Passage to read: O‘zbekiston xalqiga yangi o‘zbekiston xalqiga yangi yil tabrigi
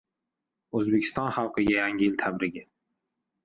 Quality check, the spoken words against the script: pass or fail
fail